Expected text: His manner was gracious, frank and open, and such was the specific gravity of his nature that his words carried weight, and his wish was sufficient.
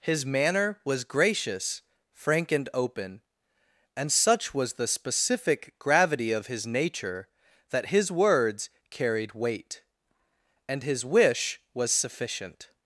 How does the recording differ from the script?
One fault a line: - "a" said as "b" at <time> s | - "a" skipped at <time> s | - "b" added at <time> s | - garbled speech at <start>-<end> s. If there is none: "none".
none